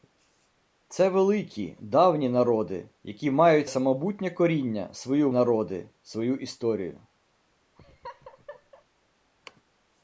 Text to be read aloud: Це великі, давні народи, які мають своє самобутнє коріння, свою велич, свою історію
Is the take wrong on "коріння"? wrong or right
right